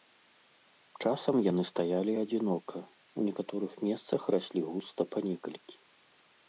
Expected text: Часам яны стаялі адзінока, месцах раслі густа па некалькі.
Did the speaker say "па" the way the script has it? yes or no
yes